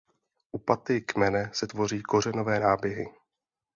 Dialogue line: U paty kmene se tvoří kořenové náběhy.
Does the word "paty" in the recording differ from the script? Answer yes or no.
no